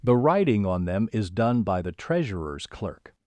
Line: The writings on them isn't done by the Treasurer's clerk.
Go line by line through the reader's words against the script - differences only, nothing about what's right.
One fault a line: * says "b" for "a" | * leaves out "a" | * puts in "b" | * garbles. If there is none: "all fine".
* says "writing" for "writings"
* says "is" for "isn't"